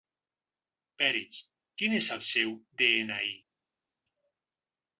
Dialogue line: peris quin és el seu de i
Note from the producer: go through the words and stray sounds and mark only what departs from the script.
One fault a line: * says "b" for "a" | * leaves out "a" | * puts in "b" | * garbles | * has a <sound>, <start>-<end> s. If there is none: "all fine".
* puts in "ena"